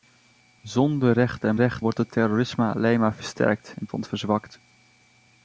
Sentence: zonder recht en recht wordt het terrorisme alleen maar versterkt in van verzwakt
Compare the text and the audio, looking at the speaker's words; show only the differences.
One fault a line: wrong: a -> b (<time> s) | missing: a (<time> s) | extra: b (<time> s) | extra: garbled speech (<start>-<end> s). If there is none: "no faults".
no faults